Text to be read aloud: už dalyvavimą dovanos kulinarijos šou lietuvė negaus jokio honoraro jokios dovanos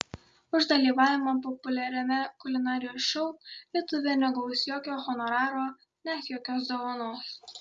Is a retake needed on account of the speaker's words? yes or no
yes